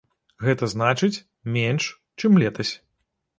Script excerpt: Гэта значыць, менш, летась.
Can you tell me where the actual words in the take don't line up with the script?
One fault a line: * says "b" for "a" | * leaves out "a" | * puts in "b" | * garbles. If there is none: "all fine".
* puts in "чым"